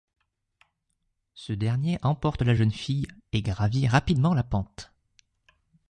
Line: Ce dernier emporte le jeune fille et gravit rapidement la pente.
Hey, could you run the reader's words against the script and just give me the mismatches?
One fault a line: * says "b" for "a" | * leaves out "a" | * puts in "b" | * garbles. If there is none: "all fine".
* says "la" for "le"